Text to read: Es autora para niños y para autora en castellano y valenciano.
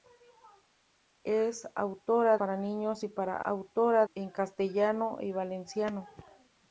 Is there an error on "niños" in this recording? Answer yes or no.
no